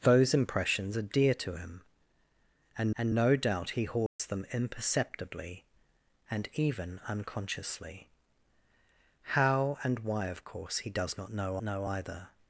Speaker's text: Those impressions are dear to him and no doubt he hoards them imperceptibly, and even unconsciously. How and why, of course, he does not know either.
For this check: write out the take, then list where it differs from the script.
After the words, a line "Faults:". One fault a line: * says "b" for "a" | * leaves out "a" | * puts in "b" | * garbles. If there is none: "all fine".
Those impressions are dear to him and and no doubt he hoards them imperceptibly, and even unconsciously. How and why, of course, he does not know know either.
Faults:
* puts in "and"
* puts in "know"